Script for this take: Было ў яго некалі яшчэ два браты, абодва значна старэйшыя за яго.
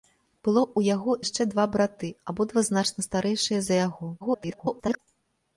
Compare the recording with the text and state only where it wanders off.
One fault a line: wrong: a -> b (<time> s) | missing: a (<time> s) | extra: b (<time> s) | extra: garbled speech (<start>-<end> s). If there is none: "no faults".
missing: некалі (1.1 s)
extra: garbled speech (4.2-5.0 s)